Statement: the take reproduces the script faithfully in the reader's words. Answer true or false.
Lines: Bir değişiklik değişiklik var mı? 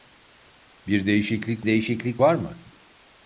true